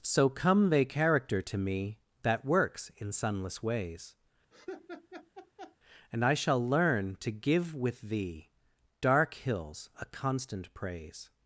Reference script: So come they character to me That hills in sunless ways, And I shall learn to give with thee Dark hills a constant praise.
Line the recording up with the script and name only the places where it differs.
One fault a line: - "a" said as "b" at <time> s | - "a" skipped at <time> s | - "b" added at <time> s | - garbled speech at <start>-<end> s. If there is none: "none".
- "hills" said as "works" at 2.5 s